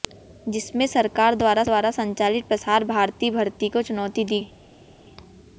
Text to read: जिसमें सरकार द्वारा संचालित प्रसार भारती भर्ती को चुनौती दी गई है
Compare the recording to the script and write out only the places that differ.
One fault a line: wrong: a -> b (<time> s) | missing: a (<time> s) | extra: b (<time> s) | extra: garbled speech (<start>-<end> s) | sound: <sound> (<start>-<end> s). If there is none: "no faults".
extra: द्वारा (1.6 s)
missing: गई (4.4 s)